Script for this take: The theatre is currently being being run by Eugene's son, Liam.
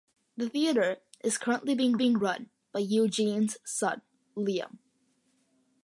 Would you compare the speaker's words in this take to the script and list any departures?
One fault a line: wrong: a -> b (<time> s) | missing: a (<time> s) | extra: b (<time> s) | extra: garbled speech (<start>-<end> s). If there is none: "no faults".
no faults